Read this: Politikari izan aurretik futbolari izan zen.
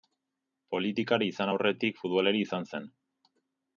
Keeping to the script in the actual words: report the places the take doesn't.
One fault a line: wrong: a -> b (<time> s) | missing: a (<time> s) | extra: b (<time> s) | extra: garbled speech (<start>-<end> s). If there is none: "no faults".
no faults